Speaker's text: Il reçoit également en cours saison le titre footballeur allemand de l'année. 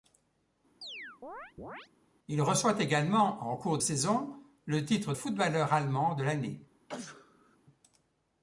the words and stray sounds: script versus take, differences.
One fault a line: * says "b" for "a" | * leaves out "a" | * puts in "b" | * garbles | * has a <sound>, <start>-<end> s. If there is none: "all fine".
* has a chirp, 0.8-1.9 s
* has a sneeze, 6.9-7.6 s